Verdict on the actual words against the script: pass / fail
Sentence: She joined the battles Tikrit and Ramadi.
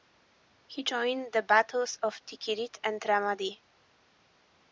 fail